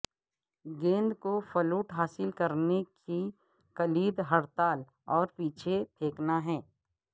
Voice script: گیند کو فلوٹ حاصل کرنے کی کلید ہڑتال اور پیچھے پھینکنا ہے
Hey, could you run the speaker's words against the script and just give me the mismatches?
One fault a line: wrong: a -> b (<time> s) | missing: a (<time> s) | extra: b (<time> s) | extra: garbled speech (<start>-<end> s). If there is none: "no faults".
no faults